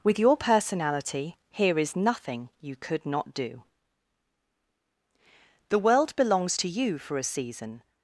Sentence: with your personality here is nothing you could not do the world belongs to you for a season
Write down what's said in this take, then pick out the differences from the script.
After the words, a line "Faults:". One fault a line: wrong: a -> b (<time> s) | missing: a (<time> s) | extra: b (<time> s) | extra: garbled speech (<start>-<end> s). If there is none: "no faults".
with your personality here is nothing you could not do the world belongs to you for a season
Faults:
no faults